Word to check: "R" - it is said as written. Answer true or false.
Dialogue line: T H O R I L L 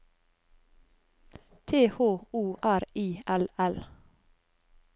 true